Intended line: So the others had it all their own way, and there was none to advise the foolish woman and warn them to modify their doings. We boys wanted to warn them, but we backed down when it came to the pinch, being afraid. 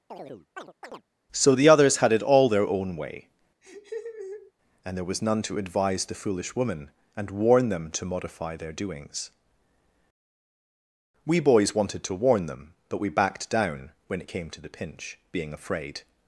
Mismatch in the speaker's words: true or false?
false